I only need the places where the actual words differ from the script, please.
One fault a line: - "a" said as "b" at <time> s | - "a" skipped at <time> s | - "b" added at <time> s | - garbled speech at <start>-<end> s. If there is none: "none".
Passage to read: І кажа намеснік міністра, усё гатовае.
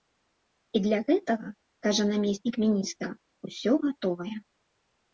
- "для гэтага" added at 0.8 s